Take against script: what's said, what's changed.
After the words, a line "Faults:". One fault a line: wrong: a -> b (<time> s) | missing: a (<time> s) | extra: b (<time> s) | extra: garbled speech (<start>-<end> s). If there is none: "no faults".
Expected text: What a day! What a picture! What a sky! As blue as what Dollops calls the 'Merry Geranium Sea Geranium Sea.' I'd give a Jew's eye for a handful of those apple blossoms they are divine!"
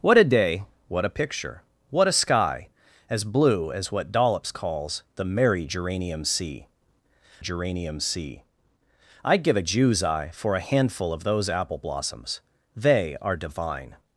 What a day! What a picture! What a sky! As blue as what Dollops calls the 'Merry Geranium Sea Geranium Sea.' I'd give a Jew's eye for a handful of those apple blossoms they are divine!"
Faults:
no faults